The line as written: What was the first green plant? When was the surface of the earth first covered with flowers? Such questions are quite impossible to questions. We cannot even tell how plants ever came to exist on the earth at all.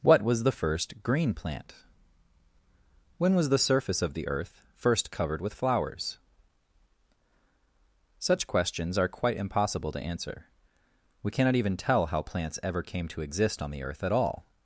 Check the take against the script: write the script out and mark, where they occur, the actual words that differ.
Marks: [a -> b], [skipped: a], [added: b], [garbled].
What was the first green plant? When was the surface of the earth first covered with flowers? Such questions are quite impossible to [questions. -> answer] We cannot even tell how plants ever came to exist on the earth at all.